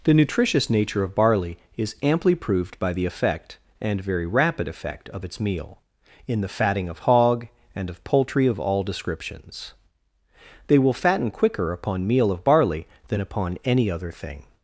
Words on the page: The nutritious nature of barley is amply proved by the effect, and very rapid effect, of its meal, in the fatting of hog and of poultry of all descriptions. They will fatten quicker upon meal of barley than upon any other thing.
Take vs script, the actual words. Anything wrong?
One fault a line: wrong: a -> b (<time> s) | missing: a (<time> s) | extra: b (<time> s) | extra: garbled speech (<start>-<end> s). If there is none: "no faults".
no faults